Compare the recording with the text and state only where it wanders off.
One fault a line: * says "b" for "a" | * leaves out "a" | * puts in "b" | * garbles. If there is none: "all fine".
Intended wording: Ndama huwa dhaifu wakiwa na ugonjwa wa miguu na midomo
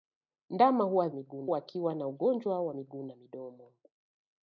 * says "miguu" for "dhaifu"